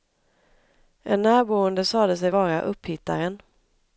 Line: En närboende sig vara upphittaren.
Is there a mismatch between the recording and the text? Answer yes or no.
yes